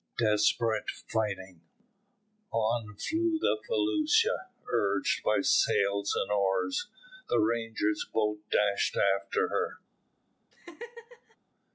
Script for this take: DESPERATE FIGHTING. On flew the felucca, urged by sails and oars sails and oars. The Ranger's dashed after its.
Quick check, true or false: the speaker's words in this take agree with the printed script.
false